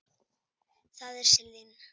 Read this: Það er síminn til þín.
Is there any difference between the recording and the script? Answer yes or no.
yes